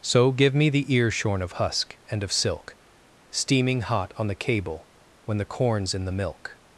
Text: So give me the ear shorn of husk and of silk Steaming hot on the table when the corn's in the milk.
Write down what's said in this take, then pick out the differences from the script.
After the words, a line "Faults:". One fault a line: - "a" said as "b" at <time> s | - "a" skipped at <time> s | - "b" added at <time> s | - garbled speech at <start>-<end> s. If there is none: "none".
So give me the ear shorn of husk and of silk Steaming hot on the cable when the corn's in the milk.
Faults:
- "table" said as "cable" at 4.3 s